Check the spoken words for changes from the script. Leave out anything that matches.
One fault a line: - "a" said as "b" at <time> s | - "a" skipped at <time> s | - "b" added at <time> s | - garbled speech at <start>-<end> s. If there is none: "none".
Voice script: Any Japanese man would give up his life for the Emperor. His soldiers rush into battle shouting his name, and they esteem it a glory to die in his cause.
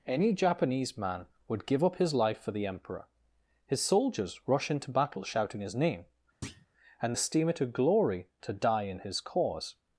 - "they" skipped at 7.2 s